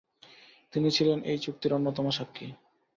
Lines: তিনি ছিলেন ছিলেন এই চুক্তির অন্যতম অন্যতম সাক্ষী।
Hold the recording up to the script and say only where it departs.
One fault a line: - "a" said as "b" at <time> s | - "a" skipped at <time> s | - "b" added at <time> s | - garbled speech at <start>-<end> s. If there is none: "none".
- "ছিলেন" skipped at 1.2 s
- "অন্যতম" skipped at 2.1 s